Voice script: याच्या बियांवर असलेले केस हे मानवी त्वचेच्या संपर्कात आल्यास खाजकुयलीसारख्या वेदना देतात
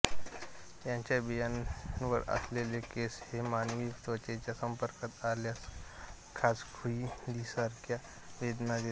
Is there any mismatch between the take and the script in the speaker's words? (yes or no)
no